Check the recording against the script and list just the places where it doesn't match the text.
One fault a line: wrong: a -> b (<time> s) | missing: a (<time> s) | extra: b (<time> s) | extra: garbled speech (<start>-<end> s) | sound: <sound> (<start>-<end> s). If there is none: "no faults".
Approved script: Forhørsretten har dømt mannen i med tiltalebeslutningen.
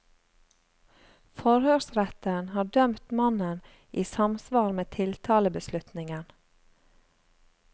extra: samsvar (4.1 s)